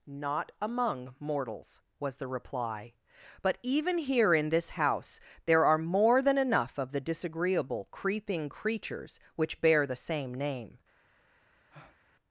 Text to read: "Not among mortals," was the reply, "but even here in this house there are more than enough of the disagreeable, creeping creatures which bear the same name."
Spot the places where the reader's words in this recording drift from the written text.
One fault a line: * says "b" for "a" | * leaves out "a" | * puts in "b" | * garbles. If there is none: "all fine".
all fine